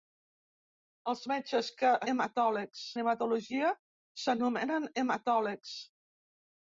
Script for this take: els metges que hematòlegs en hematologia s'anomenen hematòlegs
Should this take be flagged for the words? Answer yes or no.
no